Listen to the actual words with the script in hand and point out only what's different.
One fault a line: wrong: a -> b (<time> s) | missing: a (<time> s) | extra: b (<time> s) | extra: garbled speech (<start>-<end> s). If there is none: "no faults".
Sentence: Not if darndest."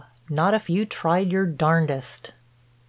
extra: you tried your (0.7 s)